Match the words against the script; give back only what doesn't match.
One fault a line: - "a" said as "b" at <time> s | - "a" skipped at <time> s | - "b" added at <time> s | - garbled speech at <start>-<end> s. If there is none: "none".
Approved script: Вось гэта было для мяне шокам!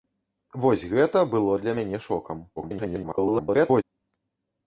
- garbled speech at 2.6-3.8 s